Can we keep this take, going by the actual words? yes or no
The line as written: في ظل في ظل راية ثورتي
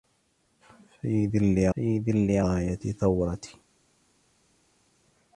yes